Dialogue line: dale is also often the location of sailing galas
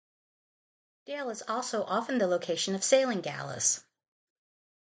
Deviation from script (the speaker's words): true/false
false